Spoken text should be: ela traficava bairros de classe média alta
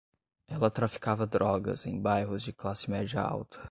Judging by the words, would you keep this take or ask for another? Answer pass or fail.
fail